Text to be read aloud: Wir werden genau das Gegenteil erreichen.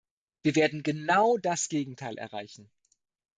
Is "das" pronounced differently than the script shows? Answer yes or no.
no